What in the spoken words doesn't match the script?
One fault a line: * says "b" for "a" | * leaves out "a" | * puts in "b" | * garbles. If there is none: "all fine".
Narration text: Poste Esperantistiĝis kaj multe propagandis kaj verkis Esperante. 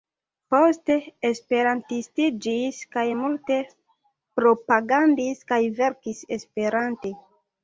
all fine